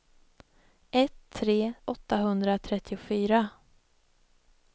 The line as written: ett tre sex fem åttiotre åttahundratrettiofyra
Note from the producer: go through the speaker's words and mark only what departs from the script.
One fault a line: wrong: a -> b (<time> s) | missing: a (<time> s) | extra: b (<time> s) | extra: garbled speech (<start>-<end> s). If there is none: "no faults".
missing: sex fem åttiotre (1.7 s)